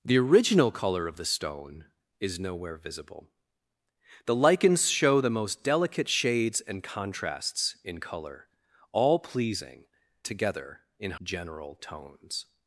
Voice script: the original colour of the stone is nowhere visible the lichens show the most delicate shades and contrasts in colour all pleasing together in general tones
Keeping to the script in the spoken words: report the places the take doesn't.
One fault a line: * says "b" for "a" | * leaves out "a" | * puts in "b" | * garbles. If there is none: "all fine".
all fine